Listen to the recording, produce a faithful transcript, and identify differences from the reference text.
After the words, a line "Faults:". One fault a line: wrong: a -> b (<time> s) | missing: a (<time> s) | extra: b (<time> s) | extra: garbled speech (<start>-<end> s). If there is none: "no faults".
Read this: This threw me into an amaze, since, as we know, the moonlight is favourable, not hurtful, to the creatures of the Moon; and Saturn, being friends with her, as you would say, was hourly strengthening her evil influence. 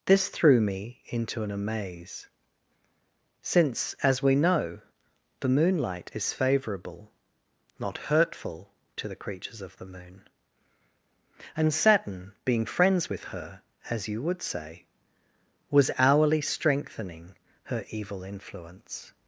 This threw me into an amaze, since, as we know, the moonlight is favourable, not hurtful, to the creatures of the Moon; and Saturn, being friends with her, as you would say, was hourly strengthening her evil influence.
Faults:
no faults